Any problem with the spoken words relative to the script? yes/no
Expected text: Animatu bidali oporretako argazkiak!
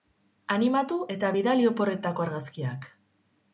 yes